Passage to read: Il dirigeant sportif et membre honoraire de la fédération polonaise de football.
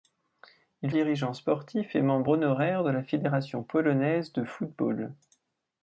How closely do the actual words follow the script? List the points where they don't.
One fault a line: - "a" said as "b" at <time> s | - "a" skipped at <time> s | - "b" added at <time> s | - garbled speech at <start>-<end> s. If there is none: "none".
none